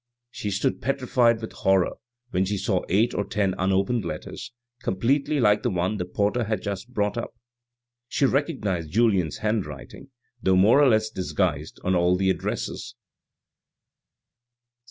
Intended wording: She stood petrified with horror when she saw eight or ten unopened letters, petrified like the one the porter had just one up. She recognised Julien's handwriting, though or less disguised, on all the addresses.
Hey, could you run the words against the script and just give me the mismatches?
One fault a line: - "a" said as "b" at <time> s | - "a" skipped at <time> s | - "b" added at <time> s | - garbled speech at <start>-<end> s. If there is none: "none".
- "petrified" said as "completely" at 4.8 s
- "one" said as "brought" at 6.9 s
- "more" added at 10.5 s